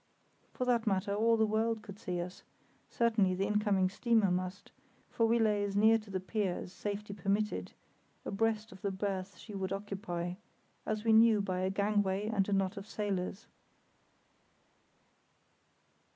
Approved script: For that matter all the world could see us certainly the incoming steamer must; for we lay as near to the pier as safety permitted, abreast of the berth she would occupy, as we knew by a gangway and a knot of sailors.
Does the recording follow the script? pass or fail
pass